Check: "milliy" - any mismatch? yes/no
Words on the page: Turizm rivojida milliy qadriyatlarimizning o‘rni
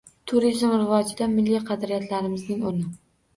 no